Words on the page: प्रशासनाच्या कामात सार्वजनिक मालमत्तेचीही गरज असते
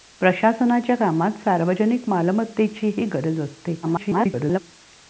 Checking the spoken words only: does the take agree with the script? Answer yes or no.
no